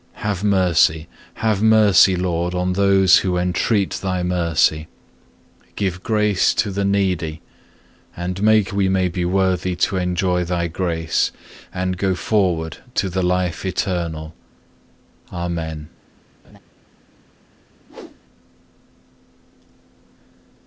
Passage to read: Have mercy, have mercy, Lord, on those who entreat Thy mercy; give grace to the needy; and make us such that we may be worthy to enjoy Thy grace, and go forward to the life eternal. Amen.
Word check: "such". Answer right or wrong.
wrong